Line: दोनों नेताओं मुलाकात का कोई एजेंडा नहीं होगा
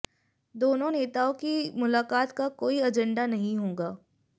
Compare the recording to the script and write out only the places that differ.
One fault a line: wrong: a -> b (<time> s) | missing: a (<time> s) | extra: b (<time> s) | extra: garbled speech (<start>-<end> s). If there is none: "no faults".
extra: की (1.3 s)